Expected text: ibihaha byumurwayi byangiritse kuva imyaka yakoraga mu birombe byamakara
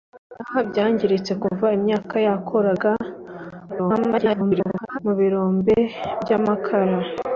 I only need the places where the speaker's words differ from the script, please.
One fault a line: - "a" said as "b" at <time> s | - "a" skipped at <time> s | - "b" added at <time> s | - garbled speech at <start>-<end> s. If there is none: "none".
- "byumurwayi" skipped at 0.6 s
- garbled speech at 3.7-5.0 s